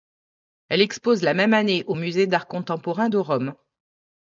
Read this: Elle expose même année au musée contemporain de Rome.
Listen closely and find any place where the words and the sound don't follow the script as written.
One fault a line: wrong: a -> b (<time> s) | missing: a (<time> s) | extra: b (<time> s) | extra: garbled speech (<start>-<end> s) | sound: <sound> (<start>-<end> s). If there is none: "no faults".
extra: la (1.2 s)
extra: d'art (2.3 s)